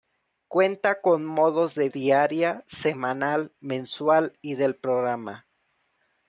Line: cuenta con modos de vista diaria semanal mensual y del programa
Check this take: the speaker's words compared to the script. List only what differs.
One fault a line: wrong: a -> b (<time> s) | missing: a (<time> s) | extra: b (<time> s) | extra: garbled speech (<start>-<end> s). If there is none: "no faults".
missing: vista (1.9 s)